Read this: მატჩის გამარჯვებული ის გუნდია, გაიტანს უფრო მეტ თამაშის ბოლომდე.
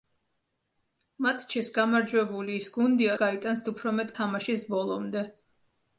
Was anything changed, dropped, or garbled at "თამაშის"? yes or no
no